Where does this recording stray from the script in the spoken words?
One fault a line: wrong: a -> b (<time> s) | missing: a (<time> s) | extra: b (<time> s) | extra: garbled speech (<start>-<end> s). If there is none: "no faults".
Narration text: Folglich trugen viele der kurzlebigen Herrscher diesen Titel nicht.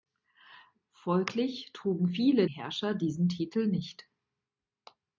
missing: der kurzlebigen (2.5 s)